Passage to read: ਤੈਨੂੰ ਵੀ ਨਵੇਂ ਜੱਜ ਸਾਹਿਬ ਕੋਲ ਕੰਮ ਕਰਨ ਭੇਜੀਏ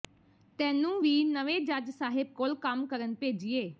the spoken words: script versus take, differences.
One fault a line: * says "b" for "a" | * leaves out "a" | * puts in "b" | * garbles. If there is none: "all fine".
all fine